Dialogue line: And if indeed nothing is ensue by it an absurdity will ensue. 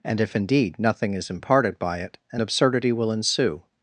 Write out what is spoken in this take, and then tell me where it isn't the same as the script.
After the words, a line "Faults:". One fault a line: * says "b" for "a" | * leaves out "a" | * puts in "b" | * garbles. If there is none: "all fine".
And if indeed nothing is imparted by it an absurdity will ensue.
Faults:
* says "imparted" for "ensue"